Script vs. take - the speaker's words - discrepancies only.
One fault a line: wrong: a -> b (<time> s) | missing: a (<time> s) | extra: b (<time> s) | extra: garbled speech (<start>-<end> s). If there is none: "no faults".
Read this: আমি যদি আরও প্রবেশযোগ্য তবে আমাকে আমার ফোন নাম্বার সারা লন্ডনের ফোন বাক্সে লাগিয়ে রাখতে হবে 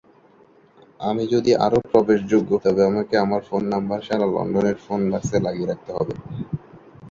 no faults